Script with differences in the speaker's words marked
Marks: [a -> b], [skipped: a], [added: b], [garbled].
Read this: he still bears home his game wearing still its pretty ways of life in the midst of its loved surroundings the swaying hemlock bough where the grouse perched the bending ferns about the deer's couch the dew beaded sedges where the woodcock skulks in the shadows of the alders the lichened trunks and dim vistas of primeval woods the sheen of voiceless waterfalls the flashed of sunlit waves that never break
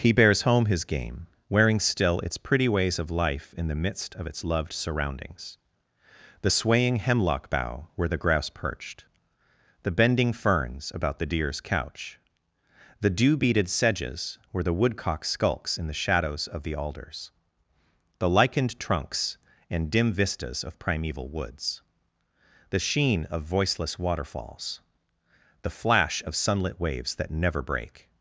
he [skipped: still] bears home his game wearing still its pretty ways of life in the midst of its loved surroundings the swaying hemlock bough where the grouse perched the bending ferns about the deer's couch the dew beaded sedges where the woodcock skulks in the shadows of the alders the lichened trunks and dim vistas of primeval woods the sheen of voiceless waterfalls the [flashed -> flash] of sunlit waves that never break